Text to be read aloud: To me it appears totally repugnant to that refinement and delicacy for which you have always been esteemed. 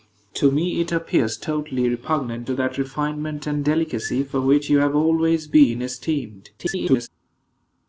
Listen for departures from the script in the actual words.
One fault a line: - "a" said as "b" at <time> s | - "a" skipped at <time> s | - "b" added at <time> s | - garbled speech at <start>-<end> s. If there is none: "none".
- garbled speech at 6.6-7.1 s